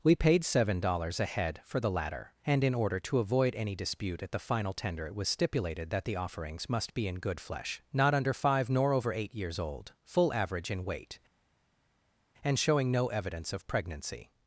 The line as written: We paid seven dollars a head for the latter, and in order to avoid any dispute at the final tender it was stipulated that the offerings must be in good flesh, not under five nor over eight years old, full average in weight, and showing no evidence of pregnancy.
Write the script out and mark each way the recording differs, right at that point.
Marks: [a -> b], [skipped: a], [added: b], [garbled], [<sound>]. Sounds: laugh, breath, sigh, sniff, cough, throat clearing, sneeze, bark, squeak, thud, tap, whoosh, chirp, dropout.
We paid seven dollars a head for the latter, and in order to avoid any dispute at the final tender it was stipulated that the offerings must be in good flesh, not under five nor over eight years old, full average in weight, and showing no evidence of pregnancy.